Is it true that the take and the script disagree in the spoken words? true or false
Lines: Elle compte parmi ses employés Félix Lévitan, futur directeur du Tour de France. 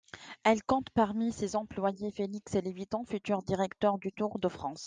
false